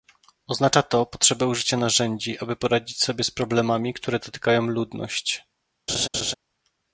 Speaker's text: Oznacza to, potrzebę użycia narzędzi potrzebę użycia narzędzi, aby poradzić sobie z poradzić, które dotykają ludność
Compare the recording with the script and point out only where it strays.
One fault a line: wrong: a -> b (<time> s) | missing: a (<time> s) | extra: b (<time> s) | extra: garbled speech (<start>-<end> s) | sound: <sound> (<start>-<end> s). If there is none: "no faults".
missing: potrzebę użycia narzędzi (2.4 s)
wrong: poradzić -> problemami (3.3 s)
sound: laugh (5.9-6.3 s)